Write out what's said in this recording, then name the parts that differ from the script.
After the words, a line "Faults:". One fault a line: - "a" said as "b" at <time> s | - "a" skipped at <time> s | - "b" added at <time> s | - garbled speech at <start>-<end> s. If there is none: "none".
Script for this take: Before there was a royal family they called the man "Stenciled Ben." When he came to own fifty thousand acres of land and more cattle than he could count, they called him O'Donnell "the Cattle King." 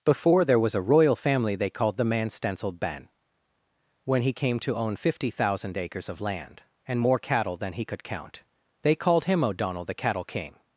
Before there was a royal family they called the man "Stenciled Ben." When he came to own fifty thousand acres of land and more cattle than he could count, they called him O'Donnell "the Cattle King."
Faults:
none